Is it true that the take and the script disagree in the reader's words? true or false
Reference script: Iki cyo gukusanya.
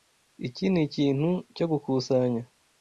true